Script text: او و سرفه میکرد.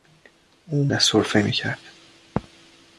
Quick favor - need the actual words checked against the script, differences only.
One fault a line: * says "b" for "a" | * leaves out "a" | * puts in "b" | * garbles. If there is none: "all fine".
all fine